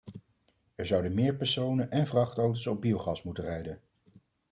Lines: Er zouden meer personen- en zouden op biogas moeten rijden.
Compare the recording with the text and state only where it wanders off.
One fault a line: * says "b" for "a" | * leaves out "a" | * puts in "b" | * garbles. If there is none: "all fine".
* says "vrachtauto's" for "zouden"